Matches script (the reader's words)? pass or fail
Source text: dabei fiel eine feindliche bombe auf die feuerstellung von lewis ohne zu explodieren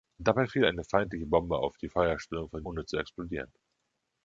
fail